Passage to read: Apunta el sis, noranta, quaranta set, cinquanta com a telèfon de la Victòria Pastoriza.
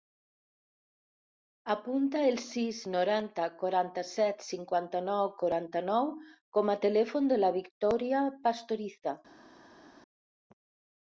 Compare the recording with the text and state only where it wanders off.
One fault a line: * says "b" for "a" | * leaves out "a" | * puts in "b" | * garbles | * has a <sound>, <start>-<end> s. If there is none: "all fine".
* puts in "nou quaranta nou"